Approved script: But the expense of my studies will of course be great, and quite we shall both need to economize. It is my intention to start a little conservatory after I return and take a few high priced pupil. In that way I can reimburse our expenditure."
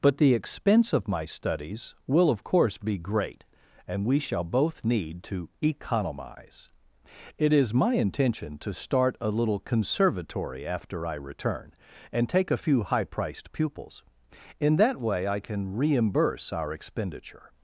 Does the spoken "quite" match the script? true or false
false